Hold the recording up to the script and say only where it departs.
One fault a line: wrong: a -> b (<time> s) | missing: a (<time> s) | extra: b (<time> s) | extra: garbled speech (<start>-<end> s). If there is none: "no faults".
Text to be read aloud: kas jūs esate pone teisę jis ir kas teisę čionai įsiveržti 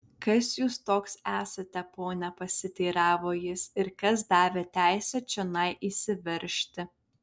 extra: toks (0.9 s)
wrong: teisę -> pasiteiravo (2.4 s)
extra: davė (4.3 s)